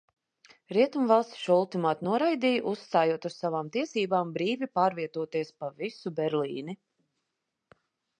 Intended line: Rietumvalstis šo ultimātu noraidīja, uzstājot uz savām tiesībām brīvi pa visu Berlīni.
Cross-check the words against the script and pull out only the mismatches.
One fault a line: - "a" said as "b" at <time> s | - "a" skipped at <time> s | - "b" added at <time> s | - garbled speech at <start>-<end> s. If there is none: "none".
- "pārvietoties" added at 4.8 s